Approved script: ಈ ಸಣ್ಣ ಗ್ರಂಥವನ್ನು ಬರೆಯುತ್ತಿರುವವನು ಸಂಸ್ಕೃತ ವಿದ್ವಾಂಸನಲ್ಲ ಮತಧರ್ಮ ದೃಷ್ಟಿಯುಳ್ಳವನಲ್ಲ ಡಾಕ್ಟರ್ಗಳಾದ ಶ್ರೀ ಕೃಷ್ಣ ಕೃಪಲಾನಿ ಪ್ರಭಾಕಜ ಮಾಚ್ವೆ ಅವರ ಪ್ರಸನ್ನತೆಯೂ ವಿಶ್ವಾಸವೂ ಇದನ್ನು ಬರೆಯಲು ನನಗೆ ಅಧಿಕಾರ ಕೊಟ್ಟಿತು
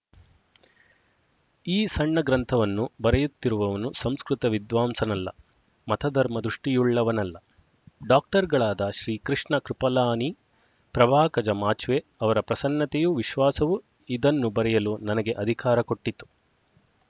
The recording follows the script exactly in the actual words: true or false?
true